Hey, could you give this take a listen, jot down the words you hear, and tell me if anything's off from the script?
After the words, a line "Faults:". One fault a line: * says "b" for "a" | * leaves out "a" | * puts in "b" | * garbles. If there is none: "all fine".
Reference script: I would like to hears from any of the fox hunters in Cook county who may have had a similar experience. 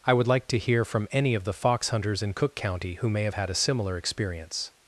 I would like to hear from any of the fox hunters in Cook county who may have had a similar experience.
Faults:
* says "hear" for "hears"